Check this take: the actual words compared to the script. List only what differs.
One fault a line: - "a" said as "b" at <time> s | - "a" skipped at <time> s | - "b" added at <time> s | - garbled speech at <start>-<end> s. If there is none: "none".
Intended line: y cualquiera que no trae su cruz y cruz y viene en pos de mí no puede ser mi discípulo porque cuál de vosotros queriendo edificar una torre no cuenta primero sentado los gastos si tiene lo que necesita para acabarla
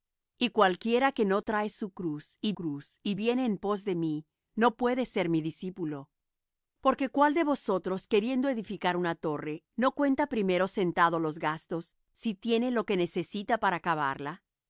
none